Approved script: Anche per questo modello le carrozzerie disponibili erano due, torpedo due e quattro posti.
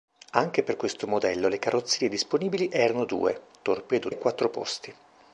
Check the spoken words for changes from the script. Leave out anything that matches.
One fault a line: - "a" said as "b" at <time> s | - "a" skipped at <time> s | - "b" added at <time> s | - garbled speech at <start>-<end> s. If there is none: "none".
- "due" skipped at 4.1 s